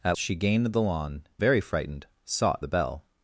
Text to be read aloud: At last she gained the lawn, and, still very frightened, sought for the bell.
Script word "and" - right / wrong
wrong